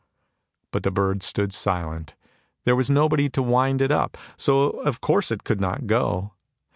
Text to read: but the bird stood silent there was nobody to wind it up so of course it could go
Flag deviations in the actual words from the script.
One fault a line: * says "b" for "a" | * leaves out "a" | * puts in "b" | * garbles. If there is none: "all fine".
* puts in "not"